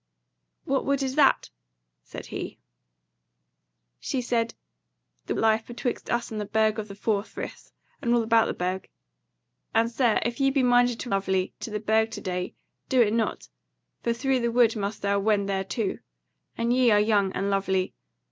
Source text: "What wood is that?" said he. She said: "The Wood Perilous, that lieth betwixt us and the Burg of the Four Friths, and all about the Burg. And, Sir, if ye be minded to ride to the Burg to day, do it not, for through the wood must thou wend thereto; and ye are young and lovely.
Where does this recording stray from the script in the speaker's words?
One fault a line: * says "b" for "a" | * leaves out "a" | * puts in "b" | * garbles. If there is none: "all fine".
* leaves out "Wood Perilous that"
* says "lovely" for "ride"